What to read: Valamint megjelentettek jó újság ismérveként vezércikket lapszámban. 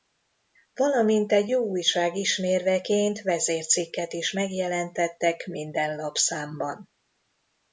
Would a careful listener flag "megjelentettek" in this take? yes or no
yes